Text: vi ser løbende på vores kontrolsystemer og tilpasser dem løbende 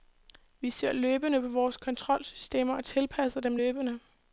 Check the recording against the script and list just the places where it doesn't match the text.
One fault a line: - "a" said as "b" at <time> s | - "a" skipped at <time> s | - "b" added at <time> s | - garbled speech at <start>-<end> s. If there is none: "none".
none